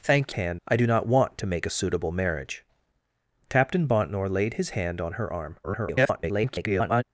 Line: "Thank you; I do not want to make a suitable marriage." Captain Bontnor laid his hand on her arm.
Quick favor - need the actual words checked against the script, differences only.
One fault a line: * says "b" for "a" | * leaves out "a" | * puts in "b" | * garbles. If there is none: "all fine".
* says "hand" for "you"
* garbles